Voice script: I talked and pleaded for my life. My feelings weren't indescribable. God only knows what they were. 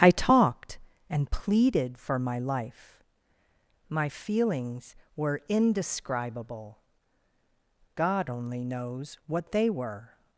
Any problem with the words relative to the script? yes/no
yes